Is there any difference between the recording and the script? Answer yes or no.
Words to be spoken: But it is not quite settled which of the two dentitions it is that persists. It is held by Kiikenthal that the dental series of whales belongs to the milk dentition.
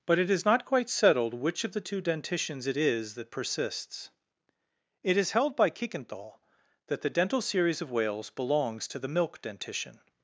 no